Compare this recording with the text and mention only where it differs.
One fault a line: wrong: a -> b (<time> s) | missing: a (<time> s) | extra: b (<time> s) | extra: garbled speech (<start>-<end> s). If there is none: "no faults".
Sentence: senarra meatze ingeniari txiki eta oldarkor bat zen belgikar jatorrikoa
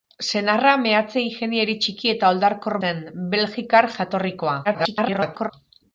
missing: bat (2.8 s)
extra: garbled speech (4.6-5.5 s)